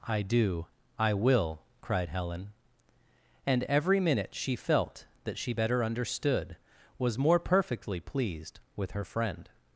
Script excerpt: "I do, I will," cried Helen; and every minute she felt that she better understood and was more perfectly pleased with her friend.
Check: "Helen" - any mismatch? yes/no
no